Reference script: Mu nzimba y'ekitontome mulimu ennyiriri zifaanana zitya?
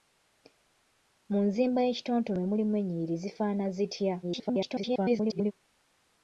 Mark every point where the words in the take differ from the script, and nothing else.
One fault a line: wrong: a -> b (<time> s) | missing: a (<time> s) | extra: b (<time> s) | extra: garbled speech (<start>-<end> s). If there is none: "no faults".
extra: garbled speech (4.2-5.5 s)